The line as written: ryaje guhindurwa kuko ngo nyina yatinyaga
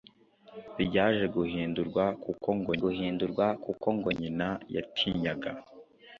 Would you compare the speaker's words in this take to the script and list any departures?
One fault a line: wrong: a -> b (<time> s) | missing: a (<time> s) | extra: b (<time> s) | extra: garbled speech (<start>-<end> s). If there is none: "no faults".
extra: guhindurwa kuko ngo (2.8 s)